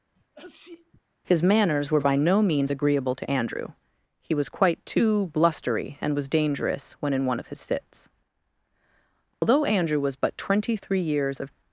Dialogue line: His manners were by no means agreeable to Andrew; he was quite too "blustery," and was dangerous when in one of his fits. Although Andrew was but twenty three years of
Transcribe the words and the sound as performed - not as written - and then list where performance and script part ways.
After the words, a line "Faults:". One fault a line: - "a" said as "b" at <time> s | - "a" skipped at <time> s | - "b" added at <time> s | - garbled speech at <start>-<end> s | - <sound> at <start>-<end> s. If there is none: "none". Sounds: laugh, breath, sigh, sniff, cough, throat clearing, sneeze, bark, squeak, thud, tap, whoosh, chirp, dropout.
His manners were by no means agreeable to Andrew; he was quite too "blustery," and was dangerous when in one of his fits. Although Andrew was but twenty three years of
Faults:
- sneeze at 0.1-1.0 s
- dropout at 9.3-9.4 s